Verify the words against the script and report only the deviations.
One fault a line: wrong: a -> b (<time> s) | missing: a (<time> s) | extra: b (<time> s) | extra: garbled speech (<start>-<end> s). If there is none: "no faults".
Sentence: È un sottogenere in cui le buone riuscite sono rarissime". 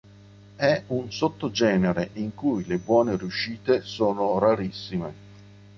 no faults